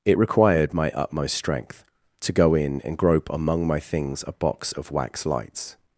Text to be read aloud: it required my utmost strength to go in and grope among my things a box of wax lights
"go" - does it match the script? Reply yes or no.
yes